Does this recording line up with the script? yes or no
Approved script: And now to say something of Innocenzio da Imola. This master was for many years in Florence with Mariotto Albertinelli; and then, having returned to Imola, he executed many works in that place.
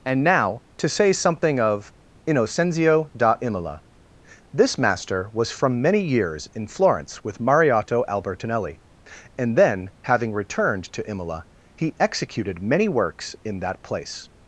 no